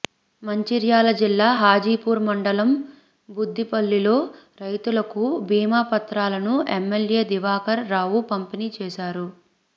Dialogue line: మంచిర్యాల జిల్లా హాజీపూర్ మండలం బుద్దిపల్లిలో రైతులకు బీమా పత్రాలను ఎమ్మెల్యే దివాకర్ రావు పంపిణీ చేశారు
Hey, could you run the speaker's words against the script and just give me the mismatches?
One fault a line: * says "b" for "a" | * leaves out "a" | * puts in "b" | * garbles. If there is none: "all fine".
all fine